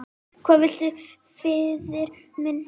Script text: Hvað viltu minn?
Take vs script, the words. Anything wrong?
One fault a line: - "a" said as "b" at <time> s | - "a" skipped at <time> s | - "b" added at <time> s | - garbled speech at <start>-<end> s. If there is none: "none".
- "faðir" added at 1.4 s